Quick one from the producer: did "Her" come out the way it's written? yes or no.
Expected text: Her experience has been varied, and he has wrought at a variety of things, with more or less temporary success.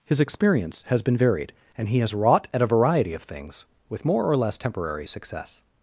no